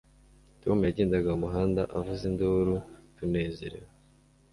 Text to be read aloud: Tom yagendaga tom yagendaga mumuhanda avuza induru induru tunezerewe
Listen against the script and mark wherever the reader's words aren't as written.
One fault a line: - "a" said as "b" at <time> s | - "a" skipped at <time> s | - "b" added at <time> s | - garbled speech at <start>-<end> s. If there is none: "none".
- "tom yagendaga" skipped at 1.3 s
- "induru" skipped at 2.7 s